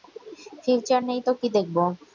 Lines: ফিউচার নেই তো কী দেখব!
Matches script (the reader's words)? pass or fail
pass